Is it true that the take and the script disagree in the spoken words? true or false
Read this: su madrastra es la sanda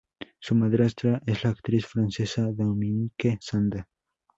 true